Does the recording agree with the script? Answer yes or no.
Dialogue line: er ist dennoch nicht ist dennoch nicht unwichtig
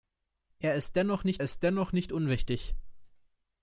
yes